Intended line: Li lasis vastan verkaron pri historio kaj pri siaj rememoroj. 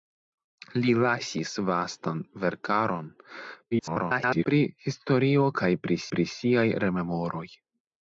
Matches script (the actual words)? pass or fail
fail